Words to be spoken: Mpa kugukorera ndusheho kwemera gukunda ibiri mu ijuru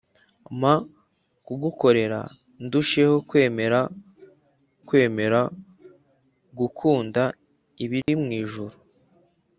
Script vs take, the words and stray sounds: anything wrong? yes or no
yes